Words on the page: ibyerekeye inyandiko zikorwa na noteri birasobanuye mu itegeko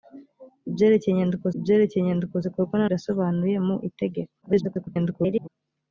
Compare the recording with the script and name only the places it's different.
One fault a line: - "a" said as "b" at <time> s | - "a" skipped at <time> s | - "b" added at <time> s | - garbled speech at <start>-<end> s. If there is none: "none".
- "ibyerekeye inyandiko" added at 1.5 s
- "noteri" skipped at 2.9 s
- garbled speech at 4.4-5.5 s